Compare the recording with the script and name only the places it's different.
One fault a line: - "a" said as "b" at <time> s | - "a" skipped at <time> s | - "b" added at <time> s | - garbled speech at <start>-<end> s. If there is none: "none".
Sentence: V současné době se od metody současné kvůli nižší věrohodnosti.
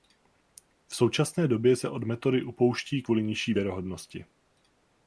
- "současné" said as "upouští" at 2.4 s